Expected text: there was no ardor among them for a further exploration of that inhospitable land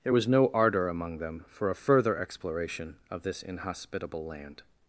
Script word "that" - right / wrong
wrong